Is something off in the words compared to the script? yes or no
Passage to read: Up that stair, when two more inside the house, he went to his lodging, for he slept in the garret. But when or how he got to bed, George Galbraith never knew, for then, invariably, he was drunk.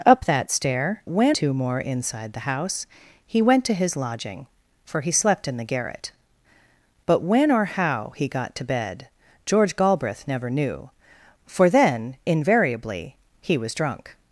no